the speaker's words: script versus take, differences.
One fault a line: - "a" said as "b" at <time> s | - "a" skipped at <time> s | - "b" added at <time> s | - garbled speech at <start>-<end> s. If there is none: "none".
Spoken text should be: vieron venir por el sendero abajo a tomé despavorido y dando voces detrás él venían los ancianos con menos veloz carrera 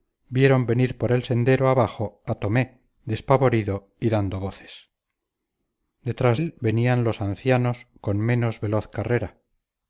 none